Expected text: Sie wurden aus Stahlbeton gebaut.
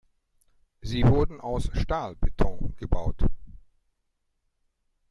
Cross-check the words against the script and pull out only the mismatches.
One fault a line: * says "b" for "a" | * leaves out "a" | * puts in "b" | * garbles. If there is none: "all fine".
all fine